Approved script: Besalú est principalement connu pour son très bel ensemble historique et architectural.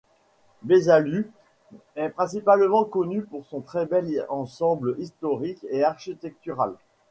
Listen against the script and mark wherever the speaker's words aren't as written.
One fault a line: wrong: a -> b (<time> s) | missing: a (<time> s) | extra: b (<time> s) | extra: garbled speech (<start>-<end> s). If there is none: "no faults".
no faults